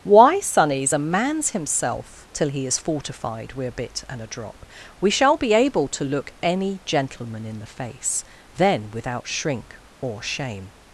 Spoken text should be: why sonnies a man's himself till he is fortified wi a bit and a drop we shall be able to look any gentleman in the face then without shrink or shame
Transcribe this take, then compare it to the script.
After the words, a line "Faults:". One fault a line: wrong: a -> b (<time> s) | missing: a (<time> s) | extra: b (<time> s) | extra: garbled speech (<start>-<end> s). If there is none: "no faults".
why sonnies a man's himself till he is fortified wi a bit and a drop we shall be able to look any gentleman in the face then without shrink or shame
Faults:
no faults